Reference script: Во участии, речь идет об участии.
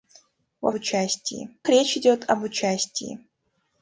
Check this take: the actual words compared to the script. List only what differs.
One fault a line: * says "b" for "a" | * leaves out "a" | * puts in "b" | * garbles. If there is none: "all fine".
all fine